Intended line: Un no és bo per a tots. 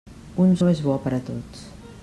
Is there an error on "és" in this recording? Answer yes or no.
no